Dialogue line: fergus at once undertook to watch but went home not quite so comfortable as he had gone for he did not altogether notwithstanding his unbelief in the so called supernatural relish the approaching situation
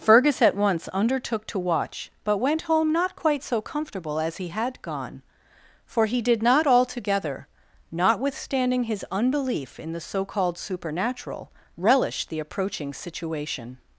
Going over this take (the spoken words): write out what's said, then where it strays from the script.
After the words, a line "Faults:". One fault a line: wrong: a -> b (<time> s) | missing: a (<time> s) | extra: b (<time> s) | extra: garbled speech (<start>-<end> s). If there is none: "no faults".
fergus at once undertook to watch but went home not quite so comfortable as he had gone for he did not altogether notwithstanding his unbelief in the so called supernatural relish the approaching situation
Faults:
no faults